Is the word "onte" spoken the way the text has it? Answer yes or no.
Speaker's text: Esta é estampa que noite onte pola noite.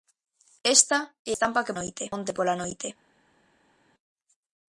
yes